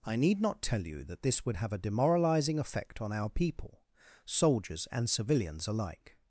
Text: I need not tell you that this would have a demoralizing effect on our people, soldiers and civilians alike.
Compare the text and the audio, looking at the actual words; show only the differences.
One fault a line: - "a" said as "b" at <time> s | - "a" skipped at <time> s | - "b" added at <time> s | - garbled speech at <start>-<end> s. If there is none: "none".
none